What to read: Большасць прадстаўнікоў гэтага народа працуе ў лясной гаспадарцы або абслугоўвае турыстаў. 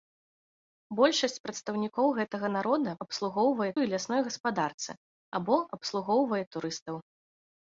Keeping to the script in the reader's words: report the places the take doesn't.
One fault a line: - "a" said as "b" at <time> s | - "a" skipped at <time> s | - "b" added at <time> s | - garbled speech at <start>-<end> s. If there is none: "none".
- "працуе" said as "абслугоўвае" at 3.1 s